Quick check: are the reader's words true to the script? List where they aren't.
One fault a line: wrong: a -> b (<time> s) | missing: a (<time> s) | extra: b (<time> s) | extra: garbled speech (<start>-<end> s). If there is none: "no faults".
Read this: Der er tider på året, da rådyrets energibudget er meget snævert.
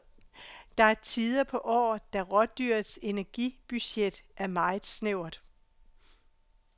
no faults